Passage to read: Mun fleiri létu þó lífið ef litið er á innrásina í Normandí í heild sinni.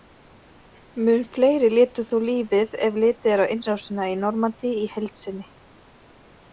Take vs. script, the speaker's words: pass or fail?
pass